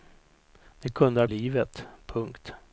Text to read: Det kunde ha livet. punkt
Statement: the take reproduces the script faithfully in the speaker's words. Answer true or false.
true